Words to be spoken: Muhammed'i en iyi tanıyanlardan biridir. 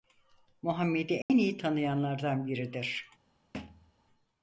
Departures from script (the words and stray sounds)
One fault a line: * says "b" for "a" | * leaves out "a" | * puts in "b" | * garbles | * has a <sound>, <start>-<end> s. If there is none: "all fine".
* has a dropout, 1.2-1.3 s
* has a thud, 3.5-3.9 s